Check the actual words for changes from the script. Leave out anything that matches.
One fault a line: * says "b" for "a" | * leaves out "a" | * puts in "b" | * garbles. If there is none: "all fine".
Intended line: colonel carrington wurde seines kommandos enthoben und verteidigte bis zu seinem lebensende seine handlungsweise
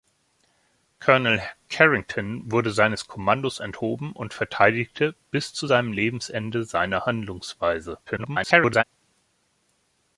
* garbles